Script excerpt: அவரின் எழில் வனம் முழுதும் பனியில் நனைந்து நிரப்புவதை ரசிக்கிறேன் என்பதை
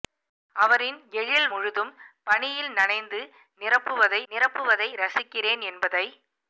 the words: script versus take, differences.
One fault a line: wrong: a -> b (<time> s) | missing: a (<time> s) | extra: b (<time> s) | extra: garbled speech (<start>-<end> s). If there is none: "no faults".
missing: வனம் (1.5 s)
extra: நிரப்புவதை (4.3 s)